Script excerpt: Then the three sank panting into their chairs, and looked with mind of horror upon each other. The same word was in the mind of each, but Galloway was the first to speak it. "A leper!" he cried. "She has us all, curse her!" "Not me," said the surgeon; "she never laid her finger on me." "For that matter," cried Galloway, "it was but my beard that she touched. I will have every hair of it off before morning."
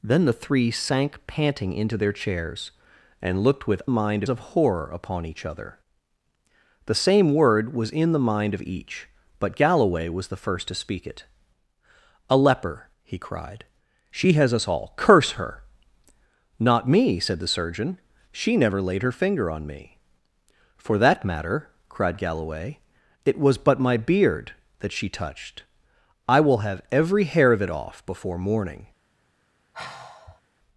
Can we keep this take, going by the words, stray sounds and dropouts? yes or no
no